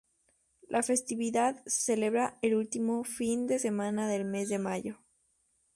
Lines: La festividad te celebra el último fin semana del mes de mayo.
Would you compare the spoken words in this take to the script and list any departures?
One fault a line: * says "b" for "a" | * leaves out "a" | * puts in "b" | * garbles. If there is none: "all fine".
* says "se" for "te"
* puts in "de"